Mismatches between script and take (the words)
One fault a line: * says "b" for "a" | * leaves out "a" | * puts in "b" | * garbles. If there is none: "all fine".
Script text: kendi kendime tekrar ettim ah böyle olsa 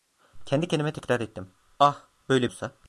all fine